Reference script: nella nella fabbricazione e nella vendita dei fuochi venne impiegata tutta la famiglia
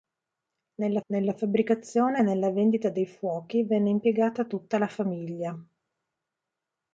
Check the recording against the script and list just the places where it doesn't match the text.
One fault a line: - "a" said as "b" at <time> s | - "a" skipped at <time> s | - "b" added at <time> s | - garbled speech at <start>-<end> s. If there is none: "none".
none